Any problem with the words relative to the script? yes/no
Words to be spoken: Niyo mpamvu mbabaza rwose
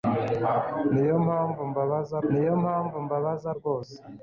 yes